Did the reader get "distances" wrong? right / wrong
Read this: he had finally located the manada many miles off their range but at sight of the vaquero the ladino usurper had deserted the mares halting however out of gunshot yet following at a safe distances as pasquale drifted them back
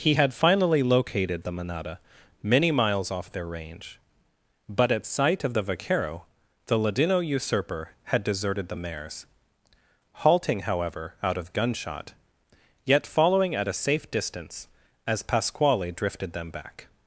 wrong